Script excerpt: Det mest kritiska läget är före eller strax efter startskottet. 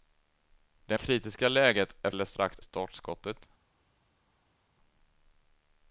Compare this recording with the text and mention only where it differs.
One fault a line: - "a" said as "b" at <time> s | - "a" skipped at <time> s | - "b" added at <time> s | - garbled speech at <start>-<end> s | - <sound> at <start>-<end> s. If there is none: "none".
- "mest" skipped at 1.0 s
- "före" skipped at 2.1 s
- "efter" skipped at 2.6 s